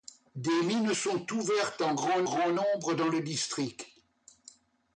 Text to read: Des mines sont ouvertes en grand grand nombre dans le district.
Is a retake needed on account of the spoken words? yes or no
no